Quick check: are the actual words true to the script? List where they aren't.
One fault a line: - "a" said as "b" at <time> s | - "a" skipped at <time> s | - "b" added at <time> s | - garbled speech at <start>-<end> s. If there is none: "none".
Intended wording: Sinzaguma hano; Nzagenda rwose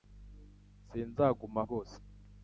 - "hano Nzagenda" skipped at 1.6 s